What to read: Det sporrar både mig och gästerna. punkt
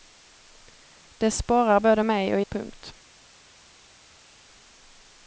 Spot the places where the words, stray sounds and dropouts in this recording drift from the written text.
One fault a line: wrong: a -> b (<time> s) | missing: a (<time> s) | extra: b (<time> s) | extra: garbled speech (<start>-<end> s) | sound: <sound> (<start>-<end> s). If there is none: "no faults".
missing: gästerna (2.4 s)